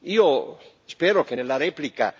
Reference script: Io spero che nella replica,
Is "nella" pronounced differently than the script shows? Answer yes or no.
no